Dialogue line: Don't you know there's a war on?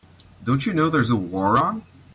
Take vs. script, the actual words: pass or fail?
pass